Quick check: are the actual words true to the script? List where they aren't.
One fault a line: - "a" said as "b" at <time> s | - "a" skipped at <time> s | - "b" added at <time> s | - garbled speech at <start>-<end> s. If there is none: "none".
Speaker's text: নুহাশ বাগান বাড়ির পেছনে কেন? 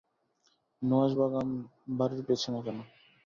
none